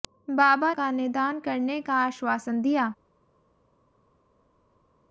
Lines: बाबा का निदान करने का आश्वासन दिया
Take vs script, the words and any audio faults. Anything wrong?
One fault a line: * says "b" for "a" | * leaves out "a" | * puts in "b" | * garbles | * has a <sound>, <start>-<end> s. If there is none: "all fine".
all fine